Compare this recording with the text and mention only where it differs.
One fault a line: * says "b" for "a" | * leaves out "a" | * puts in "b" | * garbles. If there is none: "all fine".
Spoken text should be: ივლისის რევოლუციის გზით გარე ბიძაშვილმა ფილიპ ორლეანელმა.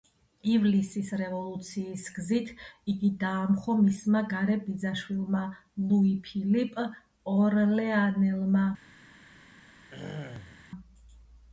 * puts in "იგი დაამხო მისმა"
* puts in "ლუი"